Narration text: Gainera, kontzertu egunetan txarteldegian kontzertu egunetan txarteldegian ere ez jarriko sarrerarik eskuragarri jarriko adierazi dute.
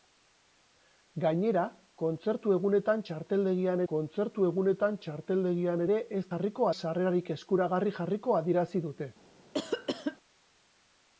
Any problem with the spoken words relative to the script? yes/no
no